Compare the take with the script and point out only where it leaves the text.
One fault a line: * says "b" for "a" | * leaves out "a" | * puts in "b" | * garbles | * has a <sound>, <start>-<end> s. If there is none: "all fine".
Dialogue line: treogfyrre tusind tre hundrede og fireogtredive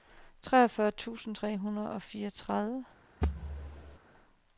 * has a thud, 3.2-4.0 s